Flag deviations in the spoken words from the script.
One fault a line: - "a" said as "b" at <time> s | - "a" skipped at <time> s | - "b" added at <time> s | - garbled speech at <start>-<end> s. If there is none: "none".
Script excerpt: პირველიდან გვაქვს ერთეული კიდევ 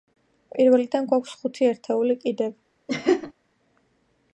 - "ხუთი" added at 1.4 s